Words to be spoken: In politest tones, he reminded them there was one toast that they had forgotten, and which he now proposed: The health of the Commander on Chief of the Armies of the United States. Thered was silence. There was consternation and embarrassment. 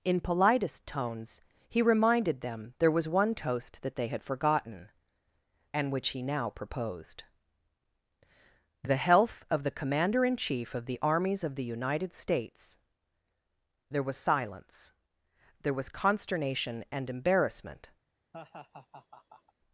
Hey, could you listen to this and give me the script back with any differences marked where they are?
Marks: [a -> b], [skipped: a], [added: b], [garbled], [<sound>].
In politest tones, he reminded them there was one toast that they had forgotten, and which he now proposed: The health of the Commander [on -> in] Chief of the Armies of the United States. [Thered -> There] was silence. There was consternation and embarrassment. [laugh]